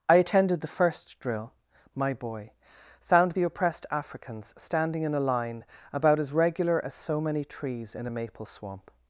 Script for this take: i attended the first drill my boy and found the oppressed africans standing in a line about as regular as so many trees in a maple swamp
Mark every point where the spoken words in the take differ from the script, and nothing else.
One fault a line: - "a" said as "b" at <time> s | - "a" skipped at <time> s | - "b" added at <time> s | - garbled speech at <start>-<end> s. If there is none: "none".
- "and" skipped at 2.5 s